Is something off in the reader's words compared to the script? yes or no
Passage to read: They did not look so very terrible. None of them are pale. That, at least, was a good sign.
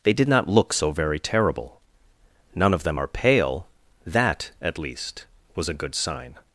no